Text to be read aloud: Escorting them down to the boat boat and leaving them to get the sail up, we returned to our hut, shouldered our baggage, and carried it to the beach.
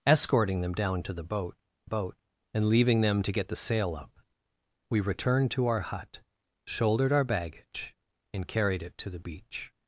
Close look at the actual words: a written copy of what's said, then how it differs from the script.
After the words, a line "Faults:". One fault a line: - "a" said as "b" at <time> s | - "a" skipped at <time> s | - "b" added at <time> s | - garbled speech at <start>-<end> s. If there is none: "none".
Escorting them down to the boat boat and leaving them to get the sail up, we returned to our hut, shouldered our baggage, and carried it to the beach.
Faults:
none